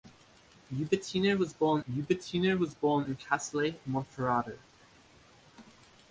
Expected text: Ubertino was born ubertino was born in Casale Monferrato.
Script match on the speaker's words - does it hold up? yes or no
yes